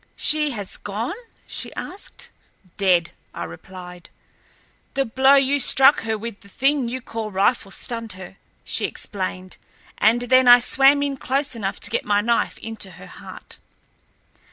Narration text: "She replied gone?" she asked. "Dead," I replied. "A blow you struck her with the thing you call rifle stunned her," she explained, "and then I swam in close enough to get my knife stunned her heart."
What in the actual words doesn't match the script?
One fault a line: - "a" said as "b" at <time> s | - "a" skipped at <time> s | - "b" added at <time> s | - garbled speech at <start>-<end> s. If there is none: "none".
- "replied" said as "has" at 0.5 s
- "A" said as "The" at 4.9 s
- "stunned" said as "into" at 12.6 s